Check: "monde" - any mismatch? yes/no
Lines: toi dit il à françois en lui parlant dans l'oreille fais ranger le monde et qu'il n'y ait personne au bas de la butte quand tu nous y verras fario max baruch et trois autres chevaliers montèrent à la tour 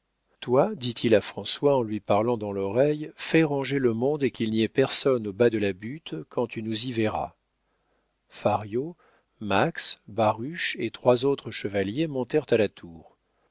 no